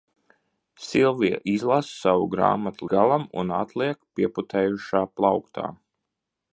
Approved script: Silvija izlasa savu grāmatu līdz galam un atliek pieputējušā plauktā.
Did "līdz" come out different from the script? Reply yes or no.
yes